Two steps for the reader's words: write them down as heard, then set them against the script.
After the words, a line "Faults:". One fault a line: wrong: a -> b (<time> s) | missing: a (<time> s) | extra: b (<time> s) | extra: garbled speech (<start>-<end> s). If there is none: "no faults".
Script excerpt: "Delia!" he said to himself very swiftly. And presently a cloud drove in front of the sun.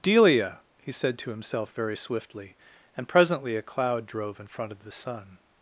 "Delia!" he said to himself very swiftly. And presently a cloud drove in front of the sun.
Faults:
no faults